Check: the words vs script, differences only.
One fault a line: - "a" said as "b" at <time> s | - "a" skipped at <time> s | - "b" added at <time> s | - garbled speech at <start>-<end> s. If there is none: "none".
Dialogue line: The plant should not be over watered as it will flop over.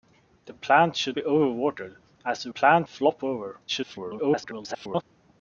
- "not" skipped at 1.1 s
- "will" said as "plant" at 2.5 s
- garbled speech at 3.7-5.0 s